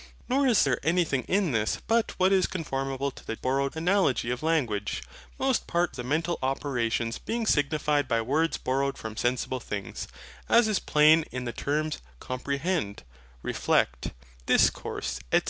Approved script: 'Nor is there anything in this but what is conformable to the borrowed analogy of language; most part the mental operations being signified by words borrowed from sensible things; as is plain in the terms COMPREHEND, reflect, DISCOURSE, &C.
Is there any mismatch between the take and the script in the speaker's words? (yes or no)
no